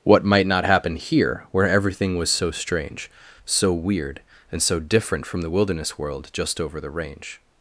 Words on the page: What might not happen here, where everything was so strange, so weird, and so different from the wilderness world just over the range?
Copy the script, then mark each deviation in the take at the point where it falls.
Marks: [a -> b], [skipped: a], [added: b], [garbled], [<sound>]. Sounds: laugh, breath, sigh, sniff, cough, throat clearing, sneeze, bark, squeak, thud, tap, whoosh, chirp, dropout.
What might not happen here, where everything was so strange, so weird, and so different from the wilderness world just over the range?